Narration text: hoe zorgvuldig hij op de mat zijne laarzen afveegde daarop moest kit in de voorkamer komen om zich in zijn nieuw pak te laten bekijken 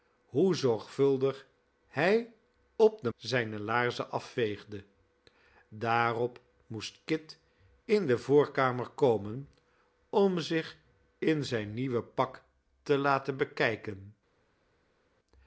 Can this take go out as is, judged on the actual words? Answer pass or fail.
fail